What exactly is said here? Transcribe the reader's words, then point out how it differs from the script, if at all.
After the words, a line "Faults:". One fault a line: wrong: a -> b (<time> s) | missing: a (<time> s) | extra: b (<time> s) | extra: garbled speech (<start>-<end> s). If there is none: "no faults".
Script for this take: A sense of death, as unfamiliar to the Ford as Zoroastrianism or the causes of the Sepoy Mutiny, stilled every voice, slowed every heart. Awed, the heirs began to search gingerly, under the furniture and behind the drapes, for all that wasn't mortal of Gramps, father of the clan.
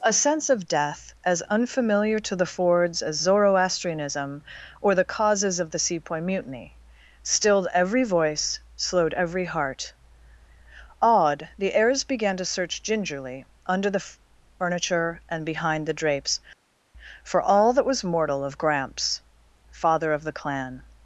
A sense of death, as unfamiliar to the Fords as Zoroastrianism or the causes of the Sepoy Mutiny, stilled every voice, slowed every heart. Awed, the heirs began to search gingerly, under the furniture and behind the drapes, for all that was mortal of Gramps, father of the clan.
Faults:
wrong: Ford -> Fords (2.5 s)
wrong: wasn't -> was (17.9 s)